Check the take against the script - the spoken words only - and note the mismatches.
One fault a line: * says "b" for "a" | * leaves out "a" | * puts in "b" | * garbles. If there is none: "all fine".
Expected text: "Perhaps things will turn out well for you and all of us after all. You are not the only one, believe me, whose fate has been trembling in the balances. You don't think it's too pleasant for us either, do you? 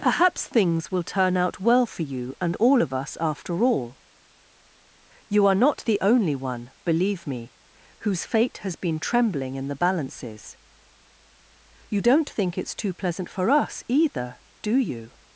all fine